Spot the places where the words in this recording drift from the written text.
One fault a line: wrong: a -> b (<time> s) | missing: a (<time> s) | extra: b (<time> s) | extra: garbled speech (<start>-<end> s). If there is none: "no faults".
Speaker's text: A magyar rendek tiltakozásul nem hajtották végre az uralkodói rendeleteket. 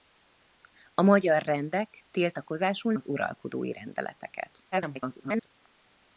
missing: nem hajtották végre (2.9 s)
extra: garbled speech (4.7-5.5 s)